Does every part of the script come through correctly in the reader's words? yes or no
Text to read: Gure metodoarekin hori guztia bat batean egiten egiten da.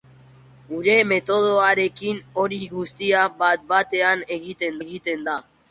yes